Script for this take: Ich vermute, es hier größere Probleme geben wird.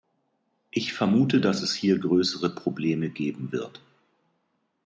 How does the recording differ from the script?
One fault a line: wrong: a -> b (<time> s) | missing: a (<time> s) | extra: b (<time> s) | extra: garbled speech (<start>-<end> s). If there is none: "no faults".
extra: dass (1.4 s)